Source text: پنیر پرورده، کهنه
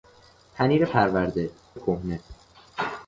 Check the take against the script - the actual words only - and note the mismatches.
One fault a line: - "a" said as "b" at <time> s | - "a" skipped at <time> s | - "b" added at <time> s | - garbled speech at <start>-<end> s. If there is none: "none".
none